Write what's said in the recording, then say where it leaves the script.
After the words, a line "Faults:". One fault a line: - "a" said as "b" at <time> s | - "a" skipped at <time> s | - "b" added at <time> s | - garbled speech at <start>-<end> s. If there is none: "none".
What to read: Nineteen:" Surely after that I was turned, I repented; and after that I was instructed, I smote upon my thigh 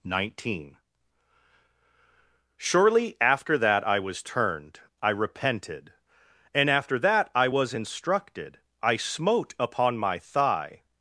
Nineteen:" Surely after that I was turned, I repented; and after that I was instructed, I smote upon my thigh
Faults:
none